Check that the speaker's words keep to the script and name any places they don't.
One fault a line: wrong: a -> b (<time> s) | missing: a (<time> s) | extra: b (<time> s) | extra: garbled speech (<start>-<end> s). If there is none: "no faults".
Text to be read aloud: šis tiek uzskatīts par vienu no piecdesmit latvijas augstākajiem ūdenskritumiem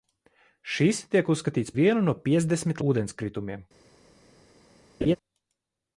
missing: par (1.8 s)
missing: latvijas augstākajiem (2.8 s)